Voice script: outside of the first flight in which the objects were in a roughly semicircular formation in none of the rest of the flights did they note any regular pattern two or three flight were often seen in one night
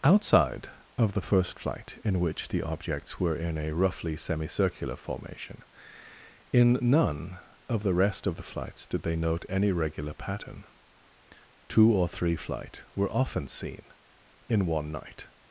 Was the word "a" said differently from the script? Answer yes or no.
no